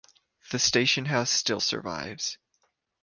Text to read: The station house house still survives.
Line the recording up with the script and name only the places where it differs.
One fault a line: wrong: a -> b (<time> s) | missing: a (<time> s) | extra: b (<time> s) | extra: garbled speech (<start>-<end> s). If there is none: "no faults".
missing: house (1.3 s)